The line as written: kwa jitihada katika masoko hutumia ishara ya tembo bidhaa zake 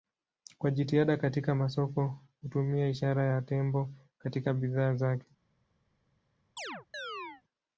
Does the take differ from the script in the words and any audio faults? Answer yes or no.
yes